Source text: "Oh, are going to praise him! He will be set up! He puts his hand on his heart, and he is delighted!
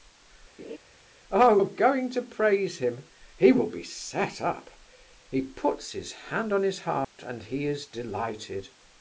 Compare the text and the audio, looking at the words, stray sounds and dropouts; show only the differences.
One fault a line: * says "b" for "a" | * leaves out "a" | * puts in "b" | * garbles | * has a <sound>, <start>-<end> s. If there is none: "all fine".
* has a laugh, 0.6-0.8 s
* has a dropout, 7.0-7.2 s